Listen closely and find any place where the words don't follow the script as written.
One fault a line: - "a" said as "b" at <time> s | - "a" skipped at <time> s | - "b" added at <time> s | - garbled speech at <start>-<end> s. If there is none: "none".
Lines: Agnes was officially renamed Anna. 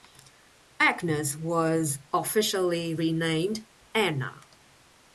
none